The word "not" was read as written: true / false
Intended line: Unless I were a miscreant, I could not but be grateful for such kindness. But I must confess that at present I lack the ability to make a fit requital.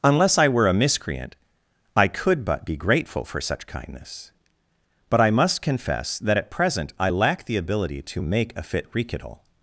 false